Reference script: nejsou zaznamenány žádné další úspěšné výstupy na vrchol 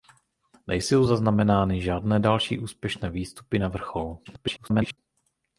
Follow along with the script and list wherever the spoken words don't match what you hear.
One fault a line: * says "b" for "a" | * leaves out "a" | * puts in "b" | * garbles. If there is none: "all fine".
* garbles